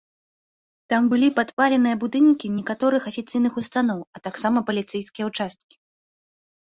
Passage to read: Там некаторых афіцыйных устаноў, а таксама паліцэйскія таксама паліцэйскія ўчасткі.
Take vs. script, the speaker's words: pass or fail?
fail